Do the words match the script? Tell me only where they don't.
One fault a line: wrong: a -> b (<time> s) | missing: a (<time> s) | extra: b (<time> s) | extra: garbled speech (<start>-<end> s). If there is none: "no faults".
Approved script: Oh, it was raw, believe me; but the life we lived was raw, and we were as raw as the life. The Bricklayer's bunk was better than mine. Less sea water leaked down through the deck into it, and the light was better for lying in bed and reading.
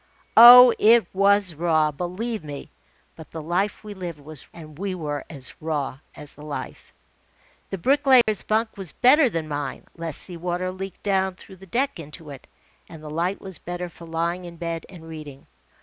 missing: raw (4.5 s)